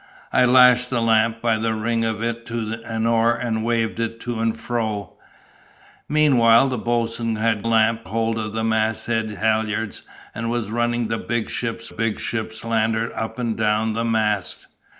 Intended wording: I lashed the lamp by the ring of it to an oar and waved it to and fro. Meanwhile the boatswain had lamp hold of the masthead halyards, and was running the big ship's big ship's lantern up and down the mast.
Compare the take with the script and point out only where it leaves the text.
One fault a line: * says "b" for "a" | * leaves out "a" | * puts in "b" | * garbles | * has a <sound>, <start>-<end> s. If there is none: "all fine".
all fine